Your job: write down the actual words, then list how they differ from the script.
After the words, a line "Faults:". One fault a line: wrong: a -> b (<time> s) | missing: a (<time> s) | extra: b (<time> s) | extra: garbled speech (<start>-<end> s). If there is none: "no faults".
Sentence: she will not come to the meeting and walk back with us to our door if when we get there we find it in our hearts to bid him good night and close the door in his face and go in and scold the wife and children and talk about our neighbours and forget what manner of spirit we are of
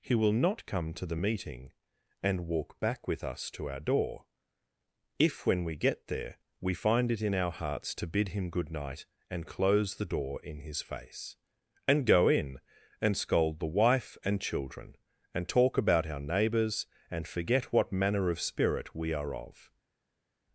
he will not come to the meeting and walk back with us to our door if when we get there we find it in our hearts to bid him good night and close the door in his face and go in and scold the wife and children and talk about our neighbours and forget what manner of spirit we are of
Faults:
wrong: she -> he (0.0 s)